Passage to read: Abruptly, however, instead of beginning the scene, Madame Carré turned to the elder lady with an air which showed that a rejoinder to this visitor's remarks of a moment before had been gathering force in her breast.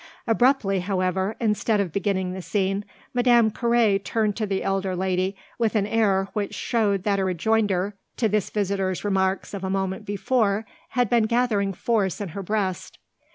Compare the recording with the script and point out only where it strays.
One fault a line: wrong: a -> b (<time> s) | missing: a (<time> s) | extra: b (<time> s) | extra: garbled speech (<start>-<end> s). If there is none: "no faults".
no faults